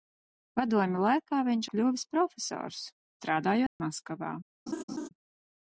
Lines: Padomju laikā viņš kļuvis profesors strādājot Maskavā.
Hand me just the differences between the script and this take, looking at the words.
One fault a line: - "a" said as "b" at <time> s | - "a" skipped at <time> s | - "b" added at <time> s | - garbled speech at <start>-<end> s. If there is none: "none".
none